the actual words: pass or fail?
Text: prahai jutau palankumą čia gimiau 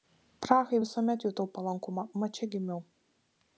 fail